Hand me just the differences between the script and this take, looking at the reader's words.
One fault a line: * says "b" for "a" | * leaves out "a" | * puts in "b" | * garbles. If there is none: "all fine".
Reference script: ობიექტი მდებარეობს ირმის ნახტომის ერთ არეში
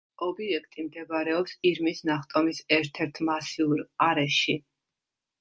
* puts in "ერთ მასიურ"